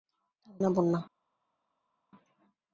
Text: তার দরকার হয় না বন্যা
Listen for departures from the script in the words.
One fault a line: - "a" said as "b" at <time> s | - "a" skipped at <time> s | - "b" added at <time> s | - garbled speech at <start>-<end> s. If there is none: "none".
- "দরকার হয়" skipped at 0.6 s